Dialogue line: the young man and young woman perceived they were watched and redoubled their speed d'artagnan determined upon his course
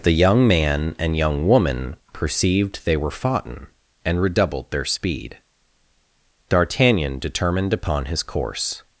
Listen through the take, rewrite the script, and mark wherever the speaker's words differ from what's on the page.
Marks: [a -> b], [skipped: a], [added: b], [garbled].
the young man and young woman perceived they were [watched -> foughten] and redoubled their speed d'artagnan determined upon his course